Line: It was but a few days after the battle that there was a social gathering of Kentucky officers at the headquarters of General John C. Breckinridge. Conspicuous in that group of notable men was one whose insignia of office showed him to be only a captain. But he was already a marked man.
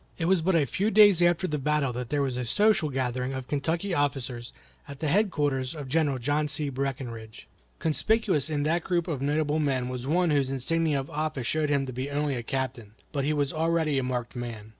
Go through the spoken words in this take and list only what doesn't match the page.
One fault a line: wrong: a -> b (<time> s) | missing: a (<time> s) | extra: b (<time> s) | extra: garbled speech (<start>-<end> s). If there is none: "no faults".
no faults